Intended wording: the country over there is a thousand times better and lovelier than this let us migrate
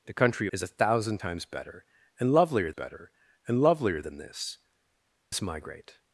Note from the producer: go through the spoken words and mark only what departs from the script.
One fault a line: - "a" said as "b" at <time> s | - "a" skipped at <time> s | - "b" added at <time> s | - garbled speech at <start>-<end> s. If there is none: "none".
- "over there" skipped at 0.5 s
- "better and lovelier" added at 2.7 s
- "let" skipped at 4.6 s